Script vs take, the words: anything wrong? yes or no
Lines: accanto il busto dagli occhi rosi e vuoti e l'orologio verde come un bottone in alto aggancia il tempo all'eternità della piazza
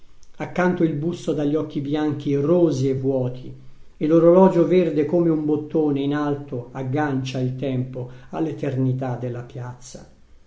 yes